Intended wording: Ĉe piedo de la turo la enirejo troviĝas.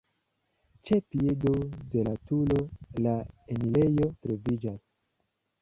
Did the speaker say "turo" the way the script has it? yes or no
yes